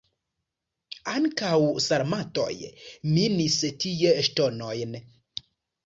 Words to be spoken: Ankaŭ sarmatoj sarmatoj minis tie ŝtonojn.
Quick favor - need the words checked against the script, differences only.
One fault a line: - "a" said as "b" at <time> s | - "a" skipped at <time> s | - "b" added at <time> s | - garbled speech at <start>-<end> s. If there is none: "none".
- "sarmatoj" skipped at 2.5 s